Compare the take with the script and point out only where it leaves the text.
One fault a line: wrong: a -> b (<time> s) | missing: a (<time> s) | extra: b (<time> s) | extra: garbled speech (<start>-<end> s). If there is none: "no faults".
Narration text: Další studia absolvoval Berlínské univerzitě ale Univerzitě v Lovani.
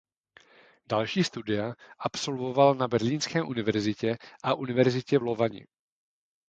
extra: na (2.8 s)
wrong: ale -> a (4.4 s)